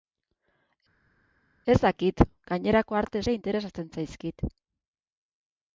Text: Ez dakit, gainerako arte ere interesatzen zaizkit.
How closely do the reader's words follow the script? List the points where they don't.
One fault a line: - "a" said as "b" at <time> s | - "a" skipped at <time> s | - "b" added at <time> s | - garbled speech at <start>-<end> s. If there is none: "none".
none